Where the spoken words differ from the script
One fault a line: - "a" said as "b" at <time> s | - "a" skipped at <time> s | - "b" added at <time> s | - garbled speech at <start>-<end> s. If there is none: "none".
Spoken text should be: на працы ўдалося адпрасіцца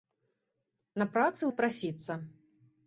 - "ўдалося" skipped at 1.4 s